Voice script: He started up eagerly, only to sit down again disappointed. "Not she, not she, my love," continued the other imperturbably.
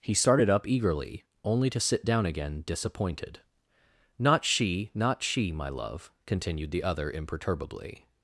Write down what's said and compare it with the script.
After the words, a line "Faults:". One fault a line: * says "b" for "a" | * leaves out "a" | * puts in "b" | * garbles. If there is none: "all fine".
He started up eagerly, only to sit down again disappointed. "Not she, not she, my love," continued the other imperturbably.
Faults:
all fine